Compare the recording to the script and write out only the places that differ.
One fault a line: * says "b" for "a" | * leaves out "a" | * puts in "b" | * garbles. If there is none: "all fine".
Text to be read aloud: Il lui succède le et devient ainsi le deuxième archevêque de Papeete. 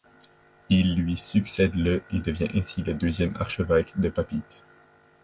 all fine